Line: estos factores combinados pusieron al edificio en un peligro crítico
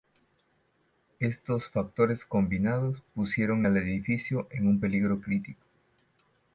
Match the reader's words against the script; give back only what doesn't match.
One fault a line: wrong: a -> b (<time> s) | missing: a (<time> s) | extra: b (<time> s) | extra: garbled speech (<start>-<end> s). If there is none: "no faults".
no faults